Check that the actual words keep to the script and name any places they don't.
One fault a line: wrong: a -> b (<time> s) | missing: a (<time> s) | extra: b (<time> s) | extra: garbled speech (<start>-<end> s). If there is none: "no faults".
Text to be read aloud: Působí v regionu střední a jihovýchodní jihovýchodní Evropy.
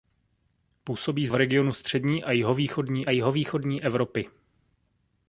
no faults